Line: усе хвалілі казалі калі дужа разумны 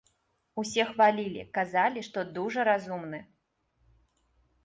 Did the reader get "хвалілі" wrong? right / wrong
right